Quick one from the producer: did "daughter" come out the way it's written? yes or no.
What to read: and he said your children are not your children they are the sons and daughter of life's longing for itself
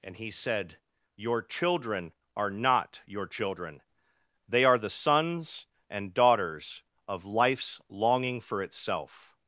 no